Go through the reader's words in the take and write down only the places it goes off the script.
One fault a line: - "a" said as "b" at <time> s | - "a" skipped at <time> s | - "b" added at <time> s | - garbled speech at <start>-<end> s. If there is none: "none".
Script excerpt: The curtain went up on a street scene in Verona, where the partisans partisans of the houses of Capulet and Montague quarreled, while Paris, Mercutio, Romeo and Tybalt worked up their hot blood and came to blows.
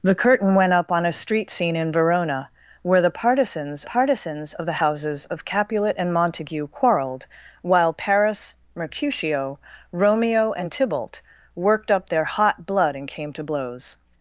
none